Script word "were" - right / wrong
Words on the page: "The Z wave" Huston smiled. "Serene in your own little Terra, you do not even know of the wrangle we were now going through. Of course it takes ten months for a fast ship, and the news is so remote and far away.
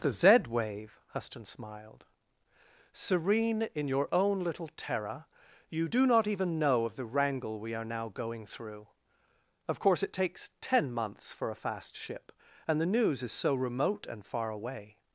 wrong